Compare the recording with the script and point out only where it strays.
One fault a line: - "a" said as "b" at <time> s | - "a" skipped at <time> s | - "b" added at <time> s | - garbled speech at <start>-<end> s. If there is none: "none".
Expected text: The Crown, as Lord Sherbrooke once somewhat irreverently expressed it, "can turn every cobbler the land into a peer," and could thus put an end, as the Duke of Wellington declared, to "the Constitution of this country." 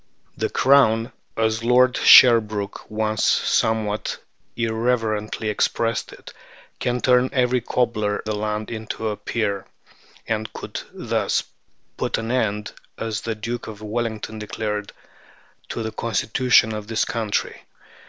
none